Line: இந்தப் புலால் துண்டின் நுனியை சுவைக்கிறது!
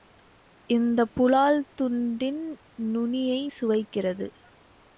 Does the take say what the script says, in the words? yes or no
yes